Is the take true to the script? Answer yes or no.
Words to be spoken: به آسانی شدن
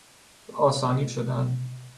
yes